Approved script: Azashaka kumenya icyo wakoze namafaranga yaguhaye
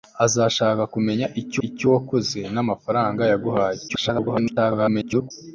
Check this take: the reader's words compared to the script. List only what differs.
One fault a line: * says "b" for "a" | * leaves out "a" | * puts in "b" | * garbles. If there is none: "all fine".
* puts in "icyo"
* garbles